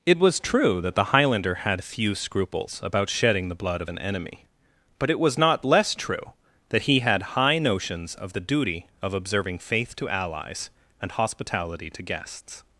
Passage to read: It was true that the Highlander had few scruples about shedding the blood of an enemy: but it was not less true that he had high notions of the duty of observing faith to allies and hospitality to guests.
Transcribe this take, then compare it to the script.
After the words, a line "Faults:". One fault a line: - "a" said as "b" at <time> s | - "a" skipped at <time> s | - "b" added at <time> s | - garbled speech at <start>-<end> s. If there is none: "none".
It was true that the Highlander had few scruples about shedding the blood of an enemy: but it was not less true that he had high notions of the duty of observing faith to allies and hospitality to guests.
Faults:
none